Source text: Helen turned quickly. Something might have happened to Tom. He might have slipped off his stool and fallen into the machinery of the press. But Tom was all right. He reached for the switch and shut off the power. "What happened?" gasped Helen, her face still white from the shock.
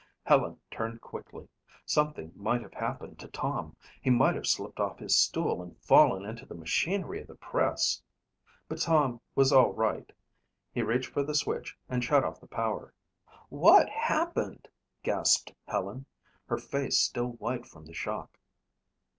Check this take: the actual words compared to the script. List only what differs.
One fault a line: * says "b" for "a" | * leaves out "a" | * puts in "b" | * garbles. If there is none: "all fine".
all fine